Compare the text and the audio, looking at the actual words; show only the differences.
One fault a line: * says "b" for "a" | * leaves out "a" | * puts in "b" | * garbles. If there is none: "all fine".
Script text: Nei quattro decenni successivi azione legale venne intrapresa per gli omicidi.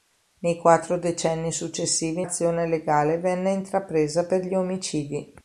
all fine